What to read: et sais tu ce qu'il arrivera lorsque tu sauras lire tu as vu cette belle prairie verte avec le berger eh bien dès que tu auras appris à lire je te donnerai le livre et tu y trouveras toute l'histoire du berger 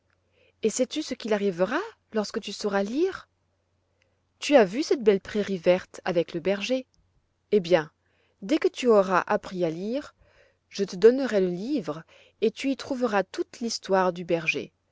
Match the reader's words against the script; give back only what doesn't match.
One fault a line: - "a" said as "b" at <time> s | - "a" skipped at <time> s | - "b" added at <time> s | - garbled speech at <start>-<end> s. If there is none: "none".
none